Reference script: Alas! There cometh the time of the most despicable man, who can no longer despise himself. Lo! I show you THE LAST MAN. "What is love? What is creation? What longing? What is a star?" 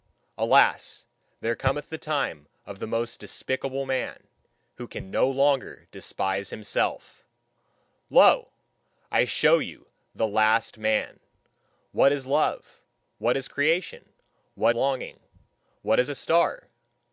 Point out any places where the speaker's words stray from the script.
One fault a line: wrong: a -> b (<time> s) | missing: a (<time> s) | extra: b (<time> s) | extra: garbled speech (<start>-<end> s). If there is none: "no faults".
no faults